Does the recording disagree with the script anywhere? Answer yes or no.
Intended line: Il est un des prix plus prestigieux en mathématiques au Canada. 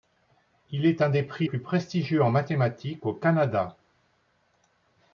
no